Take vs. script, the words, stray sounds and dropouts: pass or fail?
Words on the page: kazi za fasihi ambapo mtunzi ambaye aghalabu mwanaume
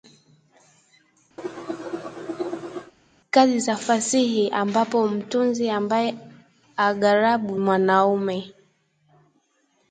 fail